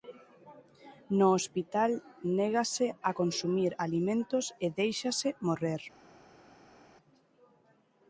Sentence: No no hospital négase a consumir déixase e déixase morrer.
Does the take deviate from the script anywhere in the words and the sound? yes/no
yes